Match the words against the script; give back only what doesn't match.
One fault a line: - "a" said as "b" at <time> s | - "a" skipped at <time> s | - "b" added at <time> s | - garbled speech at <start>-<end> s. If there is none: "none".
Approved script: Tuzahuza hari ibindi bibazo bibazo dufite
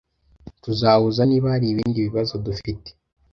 - "niba" added at 1.3 s
- "bibazo" skipped at 2.3 s